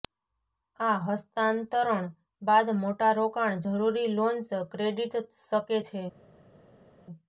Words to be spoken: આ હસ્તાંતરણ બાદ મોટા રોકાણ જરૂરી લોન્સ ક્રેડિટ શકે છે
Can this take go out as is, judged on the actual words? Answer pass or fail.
pass